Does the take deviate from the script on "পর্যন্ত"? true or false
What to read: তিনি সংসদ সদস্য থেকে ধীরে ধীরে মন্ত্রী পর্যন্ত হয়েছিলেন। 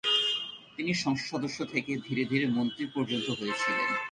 false